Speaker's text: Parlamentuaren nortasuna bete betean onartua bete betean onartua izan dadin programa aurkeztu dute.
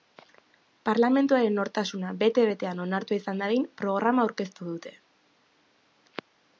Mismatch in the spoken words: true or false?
true